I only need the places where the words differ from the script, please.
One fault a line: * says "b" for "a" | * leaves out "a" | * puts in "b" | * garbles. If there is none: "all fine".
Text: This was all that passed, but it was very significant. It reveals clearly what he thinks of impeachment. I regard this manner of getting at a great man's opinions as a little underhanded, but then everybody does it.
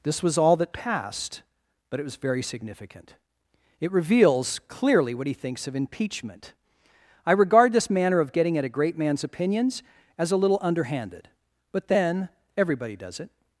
all fine